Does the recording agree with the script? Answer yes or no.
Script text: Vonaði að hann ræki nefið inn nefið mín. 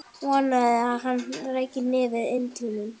no